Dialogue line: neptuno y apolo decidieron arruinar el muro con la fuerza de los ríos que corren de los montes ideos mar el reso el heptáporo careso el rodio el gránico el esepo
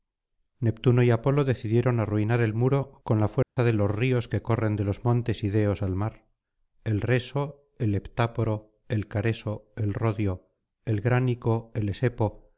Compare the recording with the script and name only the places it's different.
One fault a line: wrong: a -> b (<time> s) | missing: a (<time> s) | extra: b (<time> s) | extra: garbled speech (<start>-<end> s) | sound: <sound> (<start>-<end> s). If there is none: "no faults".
sound: dropout (3.4-3.6 s)
extra: al (5.8 s)
extra: el (8.9 s)